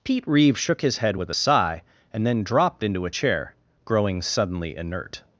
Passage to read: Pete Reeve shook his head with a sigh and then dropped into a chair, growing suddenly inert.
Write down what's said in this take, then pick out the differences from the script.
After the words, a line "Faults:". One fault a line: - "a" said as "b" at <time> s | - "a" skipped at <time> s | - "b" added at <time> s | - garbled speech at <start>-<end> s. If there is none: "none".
Pete Reeve shook his head with a sigh and then dropped into a chair, growing suddenly inert.
Faults:
none